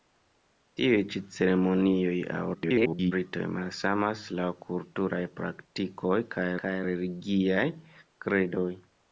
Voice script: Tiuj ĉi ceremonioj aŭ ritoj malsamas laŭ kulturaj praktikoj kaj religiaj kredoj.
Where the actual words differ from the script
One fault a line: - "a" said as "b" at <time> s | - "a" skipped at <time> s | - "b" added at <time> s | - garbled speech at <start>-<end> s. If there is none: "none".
- garbled speech at 2.5-3.1 s
- "kaj" added at 6.6 s